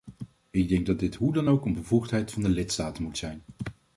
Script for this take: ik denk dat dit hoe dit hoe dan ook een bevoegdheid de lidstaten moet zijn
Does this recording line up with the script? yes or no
no